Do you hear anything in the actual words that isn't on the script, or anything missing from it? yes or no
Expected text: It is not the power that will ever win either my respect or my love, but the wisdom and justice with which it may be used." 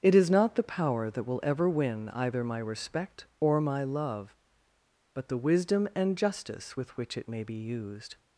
no